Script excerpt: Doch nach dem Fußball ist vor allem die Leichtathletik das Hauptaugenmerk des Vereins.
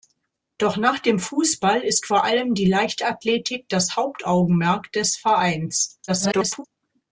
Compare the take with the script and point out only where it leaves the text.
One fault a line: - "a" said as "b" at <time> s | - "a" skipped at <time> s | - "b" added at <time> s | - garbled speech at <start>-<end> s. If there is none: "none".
- garbled speech at 6.1-6.6 s